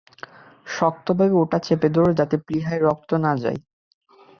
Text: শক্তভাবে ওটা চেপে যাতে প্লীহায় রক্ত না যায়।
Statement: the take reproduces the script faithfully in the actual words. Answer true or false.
false